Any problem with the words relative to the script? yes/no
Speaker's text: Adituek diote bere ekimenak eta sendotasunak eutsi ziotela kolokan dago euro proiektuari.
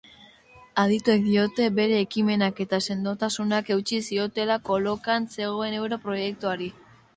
yes